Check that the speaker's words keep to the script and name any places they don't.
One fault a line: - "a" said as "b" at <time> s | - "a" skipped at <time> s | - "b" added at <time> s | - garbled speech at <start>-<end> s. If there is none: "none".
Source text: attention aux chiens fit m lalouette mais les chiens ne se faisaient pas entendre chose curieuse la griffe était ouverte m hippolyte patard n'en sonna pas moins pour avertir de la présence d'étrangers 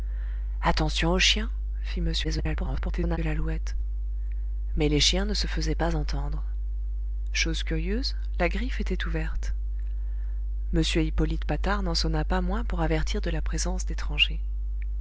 - garbled speech at 2.2-3.2 s